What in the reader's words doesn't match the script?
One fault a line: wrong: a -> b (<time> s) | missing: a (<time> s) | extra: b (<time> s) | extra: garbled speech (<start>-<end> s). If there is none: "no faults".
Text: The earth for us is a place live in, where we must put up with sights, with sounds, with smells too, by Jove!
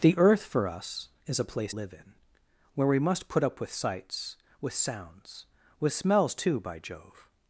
no faults